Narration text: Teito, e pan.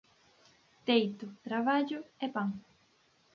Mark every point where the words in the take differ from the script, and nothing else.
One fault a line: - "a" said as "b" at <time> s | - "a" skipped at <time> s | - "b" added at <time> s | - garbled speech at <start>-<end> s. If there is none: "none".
- "traballo" added at 1.4 s